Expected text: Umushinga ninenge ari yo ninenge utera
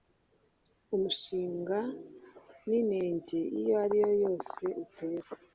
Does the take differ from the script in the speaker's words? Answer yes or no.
yes